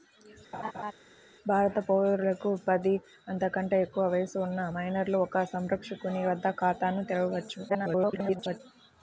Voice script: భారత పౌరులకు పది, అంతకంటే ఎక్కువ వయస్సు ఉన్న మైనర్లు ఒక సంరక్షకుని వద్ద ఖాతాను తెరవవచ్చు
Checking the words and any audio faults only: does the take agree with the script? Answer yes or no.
no